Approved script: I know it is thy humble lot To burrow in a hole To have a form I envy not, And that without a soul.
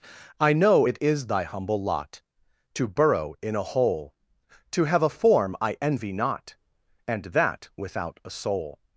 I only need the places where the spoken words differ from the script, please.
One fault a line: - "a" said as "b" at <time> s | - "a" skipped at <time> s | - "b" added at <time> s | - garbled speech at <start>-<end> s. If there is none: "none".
none